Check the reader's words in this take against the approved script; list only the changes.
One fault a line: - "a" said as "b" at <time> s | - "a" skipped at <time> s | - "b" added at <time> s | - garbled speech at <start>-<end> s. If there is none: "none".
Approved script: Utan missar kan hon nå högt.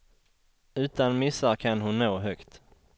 none